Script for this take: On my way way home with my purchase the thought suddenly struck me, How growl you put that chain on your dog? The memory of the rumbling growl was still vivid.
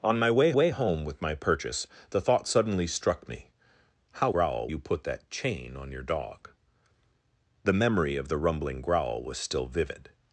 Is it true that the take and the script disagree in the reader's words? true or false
false